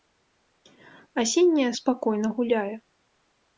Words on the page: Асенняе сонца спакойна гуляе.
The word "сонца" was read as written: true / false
false